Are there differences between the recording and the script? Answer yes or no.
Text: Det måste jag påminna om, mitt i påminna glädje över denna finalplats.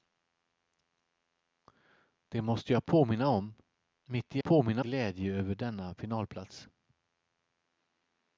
no